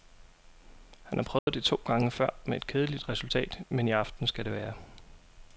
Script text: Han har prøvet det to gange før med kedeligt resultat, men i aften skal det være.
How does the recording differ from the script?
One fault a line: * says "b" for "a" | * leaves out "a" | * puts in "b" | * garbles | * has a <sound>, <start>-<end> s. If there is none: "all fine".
* has a dropout, 1.4-1.5 s
* puts in "et"